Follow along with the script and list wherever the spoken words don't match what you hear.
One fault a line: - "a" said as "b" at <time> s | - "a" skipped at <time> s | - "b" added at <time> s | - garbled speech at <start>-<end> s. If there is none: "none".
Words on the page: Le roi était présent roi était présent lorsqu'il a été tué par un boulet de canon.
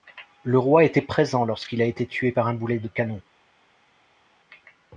- "roi était présent" skipped at 1.4 s